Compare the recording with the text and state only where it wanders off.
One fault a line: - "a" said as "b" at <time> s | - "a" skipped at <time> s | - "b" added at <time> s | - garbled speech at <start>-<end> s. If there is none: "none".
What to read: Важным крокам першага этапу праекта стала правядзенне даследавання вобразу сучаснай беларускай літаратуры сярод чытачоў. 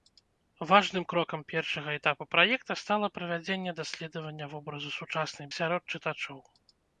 - "беларускай літаратуры" skipped at 5.5 s